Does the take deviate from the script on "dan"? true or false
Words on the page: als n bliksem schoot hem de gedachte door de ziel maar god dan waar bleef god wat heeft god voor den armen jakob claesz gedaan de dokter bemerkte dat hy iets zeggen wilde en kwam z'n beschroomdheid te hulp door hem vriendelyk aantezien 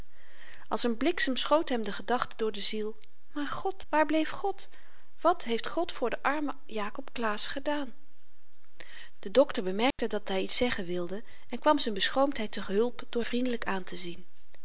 true